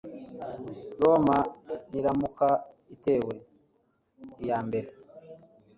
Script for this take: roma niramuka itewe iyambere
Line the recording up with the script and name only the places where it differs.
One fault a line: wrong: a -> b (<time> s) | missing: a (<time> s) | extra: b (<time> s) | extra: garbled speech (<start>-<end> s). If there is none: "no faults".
no faults